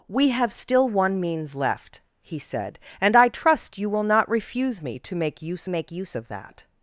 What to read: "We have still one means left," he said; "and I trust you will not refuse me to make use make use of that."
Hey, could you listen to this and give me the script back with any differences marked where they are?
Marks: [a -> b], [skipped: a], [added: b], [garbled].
"We have still one means left," he said; "and I trust you will not refuse me to make use make use of that."